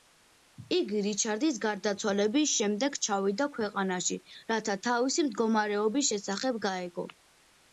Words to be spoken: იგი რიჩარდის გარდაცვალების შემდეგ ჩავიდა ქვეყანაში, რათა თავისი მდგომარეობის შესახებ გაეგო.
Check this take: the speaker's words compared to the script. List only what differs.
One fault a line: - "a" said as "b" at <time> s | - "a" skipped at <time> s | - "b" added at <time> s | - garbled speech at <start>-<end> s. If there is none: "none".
none